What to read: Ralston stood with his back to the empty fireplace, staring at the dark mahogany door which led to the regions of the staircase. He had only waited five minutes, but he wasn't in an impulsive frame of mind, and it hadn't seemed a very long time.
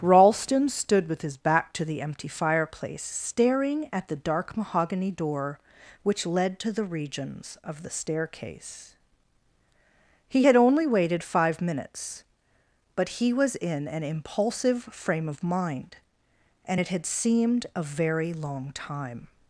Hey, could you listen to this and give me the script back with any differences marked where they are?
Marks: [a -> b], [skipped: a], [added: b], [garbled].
Ralston stood with his back to the empty fireplace, staring at the dark mahogany door which led to the regions of the staircase. He had only waited five minutes, but he [wasn't -> was] in an impulsive frame of mind, and it [hadn't -> had] seemed a very long time.